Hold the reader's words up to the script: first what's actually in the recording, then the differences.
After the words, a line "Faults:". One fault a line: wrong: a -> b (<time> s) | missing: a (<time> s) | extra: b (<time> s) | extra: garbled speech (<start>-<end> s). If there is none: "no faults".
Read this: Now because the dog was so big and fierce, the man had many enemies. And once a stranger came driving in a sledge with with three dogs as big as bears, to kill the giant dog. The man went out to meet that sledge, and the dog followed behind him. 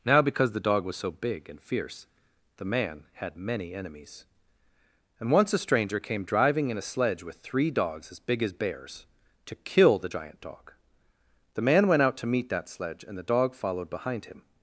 Now because the dog was so big and fierce, the man had many enemies. And once a stranger came driving in a sledge with three dogs as big as bears, to kill the giant dog. The man went out to meet that sledge, and the dog followed behind him.
Faults:
missing: with (7.4 s)